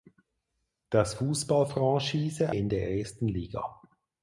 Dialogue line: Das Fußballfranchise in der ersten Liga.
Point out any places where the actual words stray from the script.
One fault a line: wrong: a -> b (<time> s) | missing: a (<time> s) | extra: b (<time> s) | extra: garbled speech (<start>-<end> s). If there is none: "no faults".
no faults